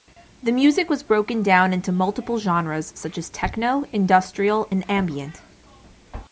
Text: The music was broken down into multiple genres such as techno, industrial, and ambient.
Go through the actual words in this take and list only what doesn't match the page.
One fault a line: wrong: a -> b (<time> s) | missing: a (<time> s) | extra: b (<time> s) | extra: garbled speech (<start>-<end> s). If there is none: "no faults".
no faults